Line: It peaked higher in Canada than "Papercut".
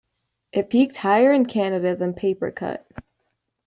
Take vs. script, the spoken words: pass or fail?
pass